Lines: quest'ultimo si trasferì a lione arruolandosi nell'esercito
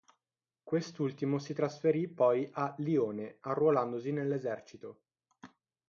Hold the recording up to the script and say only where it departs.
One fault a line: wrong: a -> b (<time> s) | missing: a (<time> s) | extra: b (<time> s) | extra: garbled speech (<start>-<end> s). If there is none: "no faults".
extra: poi (2.1 s)